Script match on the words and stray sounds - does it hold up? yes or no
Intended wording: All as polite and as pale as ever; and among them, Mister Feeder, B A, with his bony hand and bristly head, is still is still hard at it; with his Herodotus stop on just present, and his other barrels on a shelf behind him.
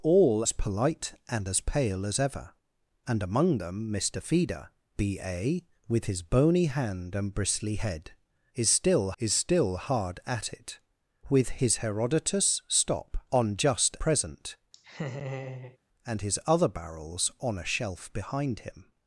no